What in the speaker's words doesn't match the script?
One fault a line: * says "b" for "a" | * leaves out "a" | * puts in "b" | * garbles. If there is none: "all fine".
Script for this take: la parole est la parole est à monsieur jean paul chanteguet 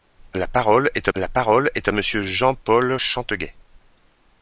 all fine